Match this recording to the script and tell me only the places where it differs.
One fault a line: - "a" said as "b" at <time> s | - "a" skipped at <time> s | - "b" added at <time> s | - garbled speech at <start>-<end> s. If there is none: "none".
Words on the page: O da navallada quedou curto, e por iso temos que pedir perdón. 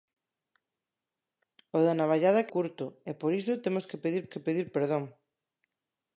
- "quedou" skipped at 2.5 s
- "que pedir" added at 4.3 s